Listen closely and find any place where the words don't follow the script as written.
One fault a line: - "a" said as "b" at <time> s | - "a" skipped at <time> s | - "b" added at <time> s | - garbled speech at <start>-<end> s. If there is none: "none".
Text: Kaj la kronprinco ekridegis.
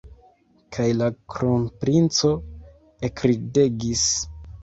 none